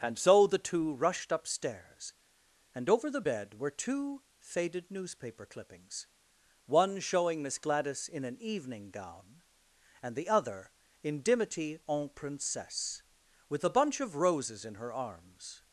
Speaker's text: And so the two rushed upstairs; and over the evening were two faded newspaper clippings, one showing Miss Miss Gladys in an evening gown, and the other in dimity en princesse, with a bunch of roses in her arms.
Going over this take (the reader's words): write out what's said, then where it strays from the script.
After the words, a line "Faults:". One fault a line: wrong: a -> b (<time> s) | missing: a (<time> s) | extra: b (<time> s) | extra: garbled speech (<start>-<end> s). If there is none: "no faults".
And so the two rushed upstairs; and over the bed were two faded newspaper clippings, one showing Miss Gladys in an evening gown, and the other in dimity en princesse, with a bunch of roses in her arms.
Faults:
wrong: evening -> bed (3.2 s)
missing: Miss (7.6 s)